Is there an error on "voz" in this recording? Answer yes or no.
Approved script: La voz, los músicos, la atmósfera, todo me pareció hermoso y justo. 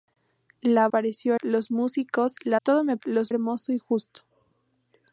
yes